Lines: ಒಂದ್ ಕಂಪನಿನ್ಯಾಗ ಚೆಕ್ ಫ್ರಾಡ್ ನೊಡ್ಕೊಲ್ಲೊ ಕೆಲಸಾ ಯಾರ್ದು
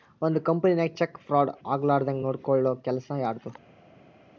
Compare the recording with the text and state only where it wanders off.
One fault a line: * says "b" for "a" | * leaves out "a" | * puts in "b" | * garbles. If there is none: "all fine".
* puts in "ಆಗ್ಲಾರ್ದಂಗ್"